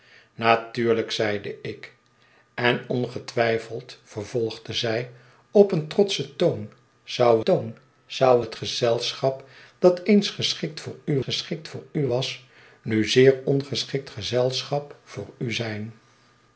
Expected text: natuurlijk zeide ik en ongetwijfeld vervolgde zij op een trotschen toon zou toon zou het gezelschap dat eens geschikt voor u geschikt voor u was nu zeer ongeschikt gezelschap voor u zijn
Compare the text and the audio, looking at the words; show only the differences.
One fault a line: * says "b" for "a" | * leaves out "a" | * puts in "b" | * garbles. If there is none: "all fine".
all fine